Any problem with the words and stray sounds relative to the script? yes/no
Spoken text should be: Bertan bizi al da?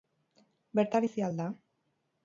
no